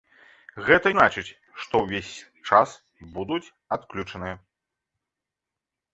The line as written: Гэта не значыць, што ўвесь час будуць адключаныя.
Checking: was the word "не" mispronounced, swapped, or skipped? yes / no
yes